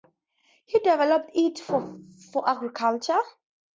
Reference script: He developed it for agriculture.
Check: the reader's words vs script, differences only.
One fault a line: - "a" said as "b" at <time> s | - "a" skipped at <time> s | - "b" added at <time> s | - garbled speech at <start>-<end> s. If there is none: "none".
none